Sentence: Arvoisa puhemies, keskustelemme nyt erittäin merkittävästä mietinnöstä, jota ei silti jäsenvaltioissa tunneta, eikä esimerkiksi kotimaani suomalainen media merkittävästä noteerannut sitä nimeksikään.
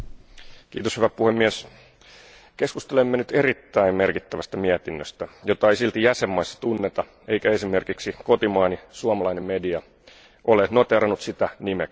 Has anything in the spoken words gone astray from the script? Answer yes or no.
yes